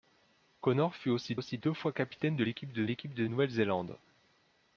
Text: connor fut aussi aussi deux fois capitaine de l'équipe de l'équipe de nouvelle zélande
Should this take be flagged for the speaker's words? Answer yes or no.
no